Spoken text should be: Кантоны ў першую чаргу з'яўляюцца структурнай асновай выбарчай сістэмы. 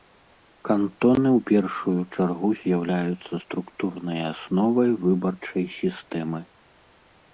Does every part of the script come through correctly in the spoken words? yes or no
yes